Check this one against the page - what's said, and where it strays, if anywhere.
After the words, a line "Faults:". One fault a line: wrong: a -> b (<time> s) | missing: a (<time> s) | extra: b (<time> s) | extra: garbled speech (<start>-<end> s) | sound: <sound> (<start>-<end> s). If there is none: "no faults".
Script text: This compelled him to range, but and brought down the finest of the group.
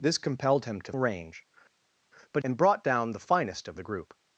This compelled him to range, but and brought down the finest of the group.
Faults:
no faults